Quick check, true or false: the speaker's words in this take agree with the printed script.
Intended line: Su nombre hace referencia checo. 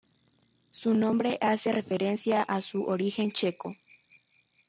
false